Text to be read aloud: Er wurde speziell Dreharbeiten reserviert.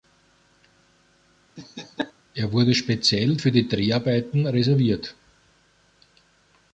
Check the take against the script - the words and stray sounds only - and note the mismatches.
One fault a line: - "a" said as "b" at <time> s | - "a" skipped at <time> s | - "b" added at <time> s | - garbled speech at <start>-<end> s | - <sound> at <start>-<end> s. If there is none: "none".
- laugh at 1.6-2.1 s
- "für die" added at 3.4 s